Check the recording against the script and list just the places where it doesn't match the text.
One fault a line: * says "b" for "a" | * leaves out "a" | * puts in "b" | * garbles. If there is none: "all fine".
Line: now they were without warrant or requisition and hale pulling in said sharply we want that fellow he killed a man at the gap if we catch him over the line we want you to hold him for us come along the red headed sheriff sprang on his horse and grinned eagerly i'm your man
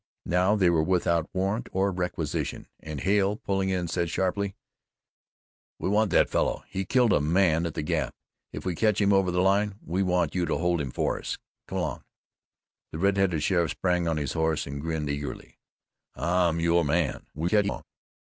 * garbles